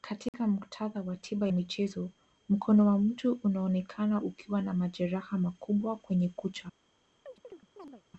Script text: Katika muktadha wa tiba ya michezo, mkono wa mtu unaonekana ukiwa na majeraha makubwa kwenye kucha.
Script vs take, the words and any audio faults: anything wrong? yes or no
yes